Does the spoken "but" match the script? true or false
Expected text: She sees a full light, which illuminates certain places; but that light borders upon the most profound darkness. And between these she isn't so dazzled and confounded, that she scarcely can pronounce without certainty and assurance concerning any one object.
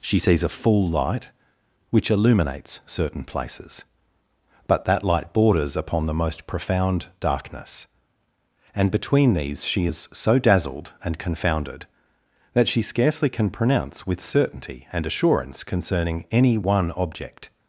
true